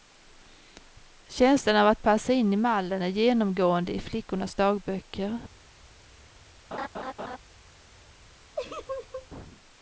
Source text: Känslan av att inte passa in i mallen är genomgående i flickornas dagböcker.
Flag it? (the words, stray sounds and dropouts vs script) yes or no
yes